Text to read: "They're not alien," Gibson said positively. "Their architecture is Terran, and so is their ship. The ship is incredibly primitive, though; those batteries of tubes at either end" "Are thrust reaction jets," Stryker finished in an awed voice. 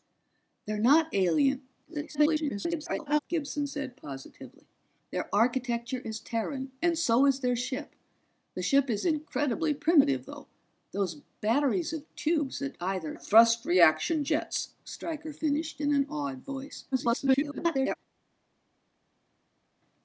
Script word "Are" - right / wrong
wrong